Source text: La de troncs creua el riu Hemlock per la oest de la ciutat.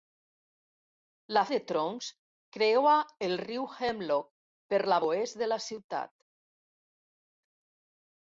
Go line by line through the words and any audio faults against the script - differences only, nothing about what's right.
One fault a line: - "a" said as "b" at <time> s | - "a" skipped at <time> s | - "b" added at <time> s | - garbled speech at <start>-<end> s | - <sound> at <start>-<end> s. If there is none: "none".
none